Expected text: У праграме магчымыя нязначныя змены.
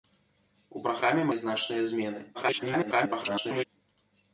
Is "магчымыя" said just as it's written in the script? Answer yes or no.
no